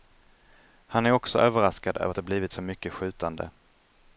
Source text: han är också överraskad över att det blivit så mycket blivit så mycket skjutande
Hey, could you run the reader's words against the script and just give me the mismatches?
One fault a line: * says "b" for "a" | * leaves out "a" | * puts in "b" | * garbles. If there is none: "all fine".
* leaves out "blivit så mycket"